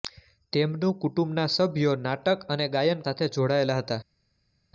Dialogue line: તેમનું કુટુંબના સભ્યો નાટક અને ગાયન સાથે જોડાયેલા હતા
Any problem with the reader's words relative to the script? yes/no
no